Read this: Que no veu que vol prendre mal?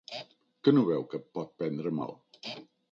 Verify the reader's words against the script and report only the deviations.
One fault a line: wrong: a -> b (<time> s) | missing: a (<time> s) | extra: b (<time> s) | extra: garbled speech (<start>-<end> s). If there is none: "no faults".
wrong: vol -> pot (1.4 s)